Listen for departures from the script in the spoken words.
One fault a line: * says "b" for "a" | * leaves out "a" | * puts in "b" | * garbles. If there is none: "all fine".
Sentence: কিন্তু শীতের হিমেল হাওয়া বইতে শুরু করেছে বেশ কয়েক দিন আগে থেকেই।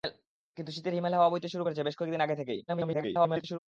* garbles